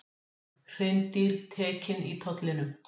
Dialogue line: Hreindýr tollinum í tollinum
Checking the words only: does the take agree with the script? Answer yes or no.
no